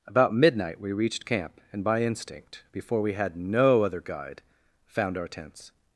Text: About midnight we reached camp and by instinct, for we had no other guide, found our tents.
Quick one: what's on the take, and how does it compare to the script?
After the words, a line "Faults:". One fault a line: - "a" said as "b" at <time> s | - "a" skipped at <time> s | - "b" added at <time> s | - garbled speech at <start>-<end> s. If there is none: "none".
About midnight we reached camp and by instinct, before we had no other guide, found our tents.
Faults:
- "for" said as "before" at 2.7 s